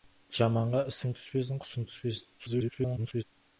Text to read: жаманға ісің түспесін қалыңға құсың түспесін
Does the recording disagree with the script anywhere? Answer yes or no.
yes